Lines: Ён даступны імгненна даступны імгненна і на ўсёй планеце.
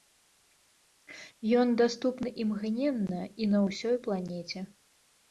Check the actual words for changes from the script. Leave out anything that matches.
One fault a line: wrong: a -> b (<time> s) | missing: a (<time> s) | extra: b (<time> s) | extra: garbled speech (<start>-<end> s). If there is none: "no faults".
missing: даступны імгненна (3.2 s)